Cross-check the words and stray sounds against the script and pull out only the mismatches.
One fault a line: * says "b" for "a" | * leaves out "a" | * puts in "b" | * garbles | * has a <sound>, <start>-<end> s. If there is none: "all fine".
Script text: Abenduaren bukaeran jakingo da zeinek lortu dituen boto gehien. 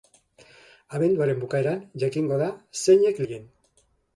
* leaves out "lortu dituen boto"